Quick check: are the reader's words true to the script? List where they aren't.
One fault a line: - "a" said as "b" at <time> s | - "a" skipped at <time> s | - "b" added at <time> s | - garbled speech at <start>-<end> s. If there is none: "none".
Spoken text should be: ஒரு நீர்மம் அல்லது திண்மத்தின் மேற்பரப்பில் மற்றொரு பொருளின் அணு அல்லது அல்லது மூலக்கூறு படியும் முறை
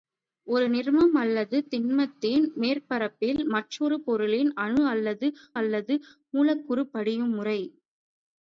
none